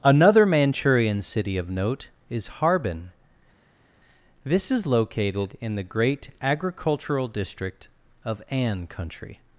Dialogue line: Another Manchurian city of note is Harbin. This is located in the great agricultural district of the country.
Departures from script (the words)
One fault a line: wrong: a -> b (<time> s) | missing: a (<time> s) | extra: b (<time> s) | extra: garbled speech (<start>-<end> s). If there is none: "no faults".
wrong: the -> an (8.5 s)